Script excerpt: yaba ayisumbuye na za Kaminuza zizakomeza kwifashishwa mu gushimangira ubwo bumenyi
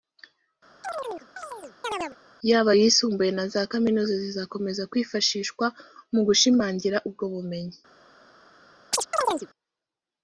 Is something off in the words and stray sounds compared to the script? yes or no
yes